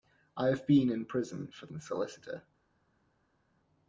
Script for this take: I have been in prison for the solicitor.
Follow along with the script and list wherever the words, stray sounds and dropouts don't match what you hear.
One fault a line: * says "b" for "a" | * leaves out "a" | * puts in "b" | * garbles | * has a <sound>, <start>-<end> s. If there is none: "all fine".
all fine